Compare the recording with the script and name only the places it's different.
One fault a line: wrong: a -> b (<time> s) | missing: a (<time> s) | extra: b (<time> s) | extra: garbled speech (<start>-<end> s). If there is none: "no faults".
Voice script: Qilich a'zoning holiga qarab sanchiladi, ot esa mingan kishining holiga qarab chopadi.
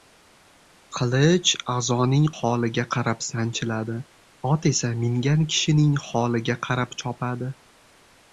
no faults